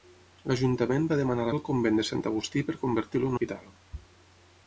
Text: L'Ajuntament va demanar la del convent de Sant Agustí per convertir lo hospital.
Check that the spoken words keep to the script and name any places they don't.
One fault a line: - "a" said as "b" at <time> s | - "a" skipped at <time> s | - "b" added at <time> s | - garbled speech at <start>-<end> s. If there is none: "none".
none